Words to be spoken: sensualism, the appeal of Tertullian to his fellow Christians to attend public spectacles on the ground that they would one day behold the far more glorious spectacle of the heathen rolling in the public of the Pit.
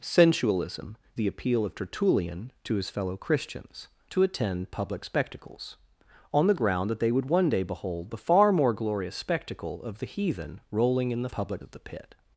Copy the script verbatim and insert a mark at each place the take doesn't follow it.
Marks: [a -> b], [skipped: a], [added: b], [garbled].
sensualism, the appeal of Tertullian to his fellow Christians to attend public spectacles on the ground that they would one day behold the far more glorious spectacle of the heathen rolling in the public of the Pit.